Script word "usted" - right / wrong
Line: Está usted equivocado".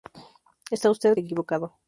right